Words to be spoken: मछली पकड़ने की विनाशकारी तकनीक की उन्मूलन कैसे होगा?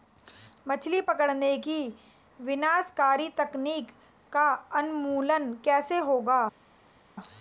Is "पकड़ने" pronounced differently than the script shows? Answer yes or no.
no